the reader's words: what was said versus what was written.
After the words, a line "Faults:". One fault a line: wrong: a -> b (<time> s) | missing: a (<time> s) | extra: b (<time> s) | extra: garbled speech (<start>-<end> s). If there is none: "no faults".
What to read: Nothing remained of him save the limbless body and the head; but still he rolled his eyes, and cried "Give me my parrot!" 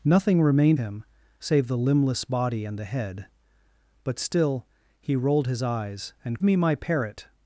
Nothing remained him save the limbless body and the head; but still he rolled his eyes, and me my parrot!"
Faults:
missing: of (0.8 s)
missing: cried Give (6.4 s)